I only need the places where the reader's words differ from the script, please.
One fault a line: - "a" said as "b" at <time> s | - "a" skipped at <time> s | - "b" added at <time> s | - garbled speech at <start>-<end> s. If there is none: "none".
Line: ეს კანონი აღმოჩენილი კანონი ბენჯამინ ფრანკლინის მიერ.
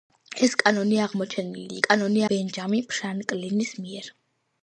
none